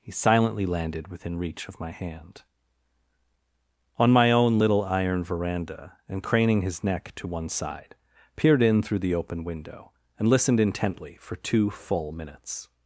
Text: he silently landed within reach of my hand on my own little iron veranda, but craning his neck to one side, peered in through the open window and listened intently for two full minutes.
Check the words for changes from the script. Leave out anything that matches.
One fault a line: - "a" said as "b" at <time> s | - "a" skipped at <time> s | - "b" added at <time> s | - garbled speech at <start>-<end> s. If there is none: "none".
- "but" said as "and" at 6.1 s